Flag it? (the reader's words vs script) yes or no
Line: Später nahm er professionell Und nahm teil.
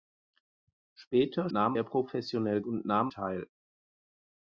no